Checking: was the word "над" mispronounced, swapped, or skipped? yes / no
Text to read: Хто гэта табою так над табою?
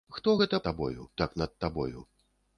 no